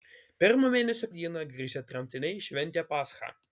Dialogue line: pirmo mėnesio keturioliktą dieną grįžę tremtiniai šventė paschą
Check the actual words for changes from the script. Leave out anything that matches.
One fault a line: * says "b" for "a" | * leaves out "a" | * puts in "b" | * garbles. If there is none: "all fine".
* leaves out "keturioliktą"